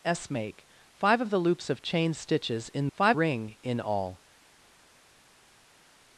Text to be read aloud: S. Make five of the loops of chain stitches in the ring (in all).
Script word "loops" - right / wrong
right